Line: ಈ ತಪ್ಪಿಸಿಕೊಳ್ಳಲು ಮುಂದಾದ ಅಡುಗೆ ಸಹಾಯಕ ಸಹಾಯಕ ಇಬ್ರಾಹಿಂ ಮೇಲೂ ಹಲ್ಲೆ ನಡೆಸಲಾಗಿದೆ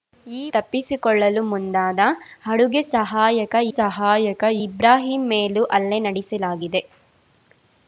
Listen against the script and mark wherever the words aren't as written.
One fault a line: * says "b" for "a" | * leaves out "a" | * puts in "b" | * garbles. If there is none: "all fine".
all fine